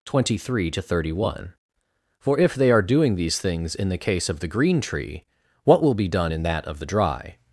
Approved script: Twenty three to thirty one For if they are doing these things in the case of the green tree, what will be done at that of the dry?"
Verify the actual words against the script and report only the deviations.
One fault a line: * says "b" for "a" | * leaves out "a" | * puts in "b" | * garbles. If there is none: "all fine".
* says "in" for "at"